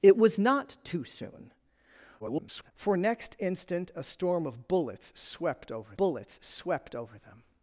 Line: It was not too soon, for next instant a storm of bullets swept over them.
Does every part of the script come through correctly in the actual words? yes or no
no